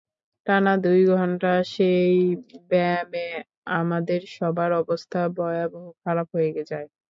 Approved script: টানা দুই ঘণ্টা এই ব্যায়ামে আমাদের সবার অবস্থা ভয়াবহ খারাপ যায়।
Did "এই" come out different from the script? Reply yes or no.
yes